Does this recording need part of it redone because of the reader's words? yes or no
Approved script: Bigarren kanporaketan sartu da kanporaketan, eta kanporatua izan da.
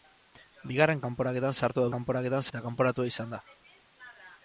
no